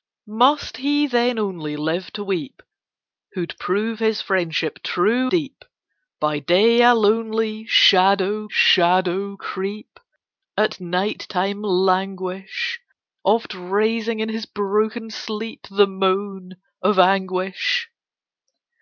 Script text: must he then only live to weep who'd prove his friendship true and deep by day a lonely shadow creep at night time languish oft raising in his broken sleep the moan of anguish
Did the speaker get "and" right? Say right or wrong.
wrong